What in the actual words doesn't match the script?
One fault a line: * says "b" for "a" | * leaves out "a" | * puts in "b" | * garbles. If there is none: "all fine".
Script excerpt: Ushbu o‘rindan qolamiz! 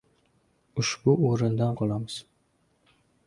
all fine